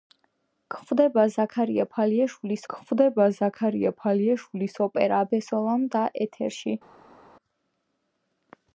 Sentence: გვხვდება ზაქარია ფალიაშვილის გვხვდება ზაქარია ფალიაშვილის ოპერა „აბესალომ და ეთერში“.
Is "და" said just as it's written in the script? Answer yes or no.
yes